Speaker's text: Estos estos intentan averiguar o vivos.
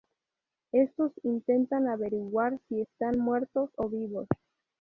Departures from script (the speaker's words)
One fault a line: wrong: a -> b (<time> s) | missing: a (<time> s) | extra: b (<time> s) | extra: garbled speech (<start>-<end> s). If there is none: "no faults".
missing: estos (1.1 s)
extra: si están muertos (2.7 s)